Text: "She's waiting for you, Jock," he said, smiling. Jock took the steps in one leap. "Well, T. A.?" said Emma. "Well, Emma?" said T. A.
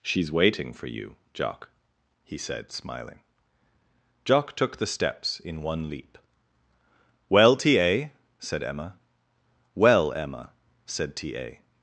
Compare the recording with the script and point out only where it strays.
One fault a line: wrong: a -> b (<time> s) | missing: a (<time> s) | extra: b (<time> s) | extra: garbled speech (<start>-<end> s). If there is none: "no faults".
no faults